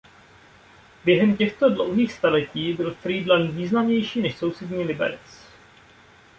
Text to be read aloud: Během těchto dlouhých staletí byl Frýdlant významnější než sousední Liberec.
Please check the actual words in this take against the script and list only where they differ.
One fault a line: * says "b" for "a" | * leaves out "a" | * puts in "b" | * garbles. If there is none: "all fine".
all fine